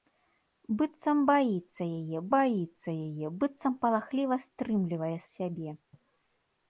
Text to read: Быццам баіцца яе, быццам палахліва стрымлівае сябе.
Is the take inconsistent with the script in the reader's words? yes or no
yes